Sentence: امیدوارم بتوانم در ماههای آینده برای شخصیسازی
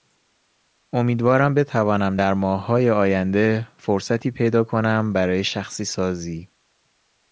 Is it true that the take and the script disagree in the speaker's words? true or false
true